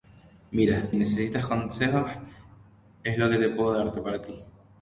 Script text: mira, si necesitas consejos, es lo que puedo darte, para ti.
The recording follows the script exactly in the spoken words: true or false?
false